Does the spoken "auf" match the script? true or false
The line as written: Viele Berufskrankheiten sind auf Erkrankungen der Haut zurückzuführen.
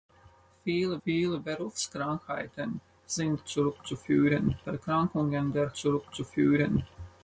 false